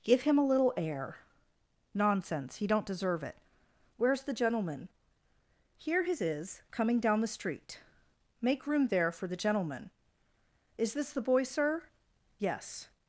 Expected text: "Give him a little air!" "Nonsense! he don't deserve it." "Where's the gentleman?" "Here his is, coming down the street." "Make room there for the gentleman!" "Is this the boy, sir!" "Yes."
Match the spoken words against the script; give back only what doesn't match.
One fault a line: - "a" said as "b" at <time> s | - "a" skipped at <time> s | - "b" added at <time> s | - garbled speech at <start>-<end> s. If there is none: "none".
none